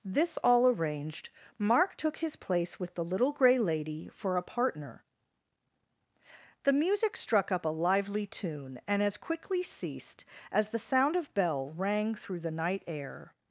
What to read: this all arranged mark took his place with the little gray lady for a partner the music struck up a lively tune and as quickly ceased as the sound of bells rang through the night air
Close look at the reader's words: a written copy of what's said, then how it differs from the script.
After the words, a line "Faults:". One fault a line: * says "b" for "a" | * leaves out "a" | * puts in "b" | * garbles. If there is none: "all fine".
this all arranged mark took his place with the little gray lady for a partner the music struck up a lively tune and as quickly ceased as the sound of bell rang through the night air
Faults:
* says "bell" for "bells"